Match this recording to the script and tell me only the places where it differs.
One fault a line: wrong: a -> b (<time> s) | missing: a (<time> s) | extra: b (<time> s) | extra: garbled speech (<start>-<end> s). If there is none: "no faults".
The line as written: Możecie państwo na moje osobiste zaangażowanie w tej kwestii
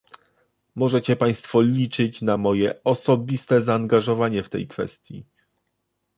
extra: liczyć (1.6 s)